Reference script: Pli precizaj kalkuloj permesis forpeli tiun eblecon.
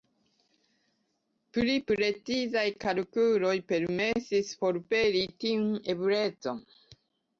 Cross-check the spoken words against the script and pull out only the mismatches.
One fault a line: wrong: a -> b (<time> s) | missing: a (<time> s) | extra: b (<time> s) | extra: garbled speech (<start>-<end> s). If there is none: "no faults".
no faults